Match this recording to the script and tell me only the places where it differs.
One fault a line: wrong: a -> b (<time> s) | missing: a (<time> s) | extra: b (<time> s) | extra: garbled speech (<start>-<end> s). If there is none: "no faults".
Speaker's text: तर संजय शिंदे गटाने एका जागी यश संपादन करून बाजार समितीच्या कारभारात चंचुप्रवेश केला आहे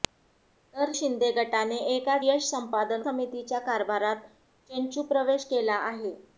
missing: संजय (0.9 s)
missing: जागी (2.2 s)
missing: करून बाजार (3.0 s)